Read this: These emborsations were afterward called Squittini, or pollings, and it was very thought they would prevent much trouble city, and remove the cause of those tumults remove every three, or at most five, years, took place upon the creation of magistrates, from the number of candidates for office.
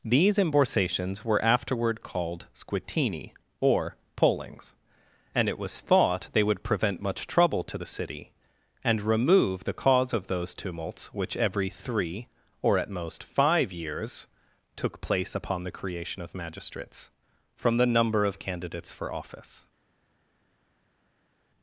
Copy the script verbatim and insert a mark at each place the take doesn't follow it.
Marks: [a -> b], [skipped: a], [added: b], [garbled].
These emborsations were afterward called Squittini, or pollings, and it was [skipped: very] thought they would prevent much trouble [added: to the] city, and remove the cause of those tumults [remove -> which] every three, or at most five, years, took place upon the creation of magistrates, from the number of candidates for office.